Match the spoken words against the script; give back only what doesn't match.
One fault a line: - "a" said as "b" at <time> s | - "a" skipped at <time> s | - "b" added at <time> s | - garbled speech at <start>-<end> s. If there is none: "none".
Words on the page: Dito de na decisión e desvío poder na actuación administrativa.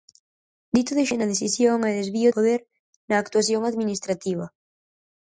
none